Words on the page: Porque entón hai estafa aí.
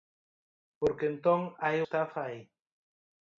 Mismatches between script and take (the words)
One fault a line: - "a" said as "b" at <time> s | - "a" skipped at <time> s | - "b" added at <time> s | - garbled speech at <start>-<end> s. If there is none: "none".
none